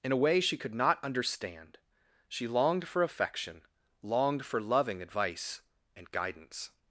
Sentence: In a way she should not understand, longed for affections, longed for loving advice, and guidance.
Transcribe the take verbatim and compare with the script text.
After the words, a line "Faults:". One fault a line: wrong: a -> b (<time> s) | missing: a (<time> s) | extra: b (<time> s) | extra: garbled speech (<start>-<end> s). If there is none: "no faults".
In a way she could not understand, she longed for affection, longed for loving advice, and guidance.
Faults:
wrong: should -> could (0.6 s)
extra: she (2.3 s)
wrong: affections -> affection (3.0 s)